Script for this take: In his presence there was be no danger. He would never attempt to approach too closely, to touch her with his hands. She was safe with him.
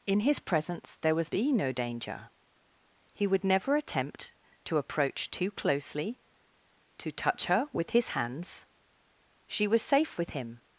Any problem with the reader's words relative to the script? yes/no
no